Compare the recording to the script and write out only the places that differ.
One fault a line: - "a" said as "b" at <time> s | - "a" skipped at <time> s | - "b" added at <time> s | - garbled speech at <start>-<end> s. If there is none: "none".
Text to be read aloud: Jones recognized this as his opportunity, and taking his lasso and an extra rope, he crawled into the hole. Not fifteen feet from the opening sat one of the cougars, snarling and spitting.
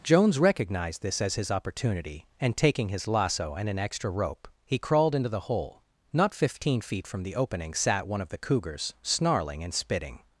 none